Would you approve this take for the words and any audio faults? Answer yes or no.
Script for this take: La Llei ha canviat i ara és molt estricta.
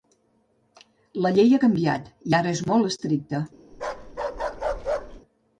no